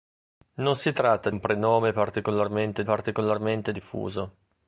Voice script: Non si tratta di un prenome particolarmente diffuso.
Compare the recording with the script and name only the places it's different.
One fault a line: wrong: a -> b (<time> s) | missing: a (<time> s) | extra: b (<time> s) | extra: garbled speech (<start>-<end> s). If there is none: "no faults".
missing: di (1.3 s)
extra: particolarmente (2.8 s)